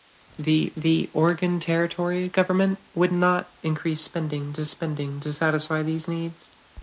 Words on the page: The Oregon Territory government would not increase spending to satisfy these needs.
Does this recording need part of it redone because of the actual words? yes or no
yes